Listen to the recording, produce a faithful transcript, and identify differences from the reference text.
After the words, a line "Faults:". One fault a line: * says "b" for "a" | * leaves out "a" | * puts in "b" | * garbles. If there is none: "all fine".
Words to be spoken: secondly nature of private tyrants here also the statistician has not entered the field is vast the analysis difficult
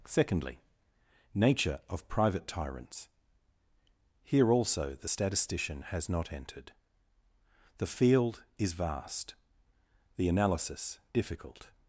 secondly nature of private tyrants here also the statistician has not entered the field is vast the analysis difficult
Faults:
all fine